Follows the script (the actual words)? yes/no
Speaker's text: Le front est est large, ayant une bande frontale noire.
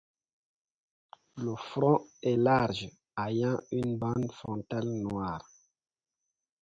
no